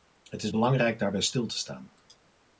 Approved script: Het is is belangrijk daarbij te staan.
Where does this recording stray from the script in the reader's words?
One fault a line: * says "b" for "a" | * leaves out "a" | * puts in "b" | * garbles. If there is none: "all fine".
* leaves out "is"
* puts in "stil"